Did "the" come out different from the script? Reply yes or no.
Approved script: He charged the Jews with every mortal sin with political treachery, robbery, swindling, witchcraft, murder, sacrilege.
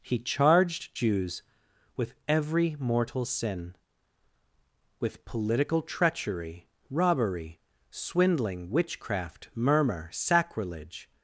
yes